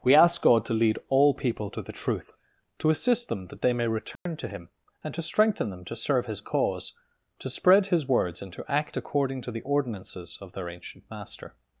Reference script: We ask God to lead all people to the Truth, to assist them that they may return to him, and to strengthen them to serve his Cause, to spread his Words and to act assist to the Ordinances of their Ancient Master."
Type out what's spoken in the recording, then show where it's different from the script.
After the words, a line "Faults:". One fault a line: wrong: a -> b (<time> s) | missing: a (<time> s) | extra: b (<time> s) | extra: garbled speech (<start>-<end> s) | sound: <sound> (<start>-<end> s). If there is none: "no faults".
We ask God to lead all people to the Truth, to assist them that they may return to him, and to strengthen them to serve his Cause, to spread his Words and to act according to the Ordinances of their Ancient Master."
Faults:
sound: dropout (4.2-4.3 s)
wrong: assist -> according (9.0 s)